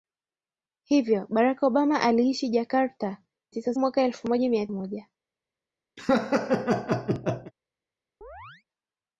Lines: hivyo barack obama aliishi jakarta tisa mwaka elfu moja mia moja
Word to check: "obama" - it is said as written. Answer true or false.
true